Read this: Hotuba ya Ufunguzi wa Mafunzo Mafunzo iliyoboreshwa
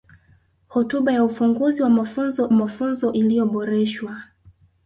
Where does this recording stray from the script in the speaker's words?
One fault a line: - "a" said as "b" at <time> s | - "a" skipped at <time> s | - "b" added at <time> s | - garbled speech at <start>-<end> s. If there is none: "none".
none